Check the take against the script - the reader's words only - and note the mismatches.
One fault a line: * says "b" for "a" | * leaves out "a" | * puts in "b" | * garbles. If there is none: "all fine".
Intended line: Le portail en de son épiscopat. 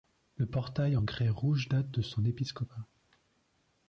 * puts in "grès rouge date"